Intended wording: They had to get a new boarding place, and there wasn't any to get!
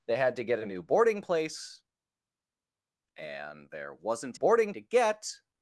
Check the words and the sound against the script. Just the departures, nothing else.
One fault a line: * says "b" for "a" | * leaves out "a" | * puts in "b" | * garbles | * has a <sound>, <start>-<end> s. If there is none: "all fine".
* says "boarding" for "any"